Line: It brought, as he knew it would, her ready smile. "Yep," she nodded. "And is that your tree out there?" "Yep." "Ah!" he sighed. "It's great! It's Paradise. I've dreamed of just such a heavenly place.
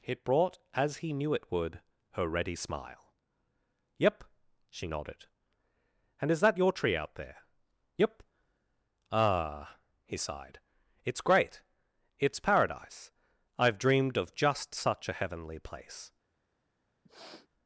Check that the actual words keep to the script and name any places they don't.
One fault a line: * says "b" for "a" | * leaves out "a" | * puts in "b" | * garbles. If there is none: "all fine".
all fine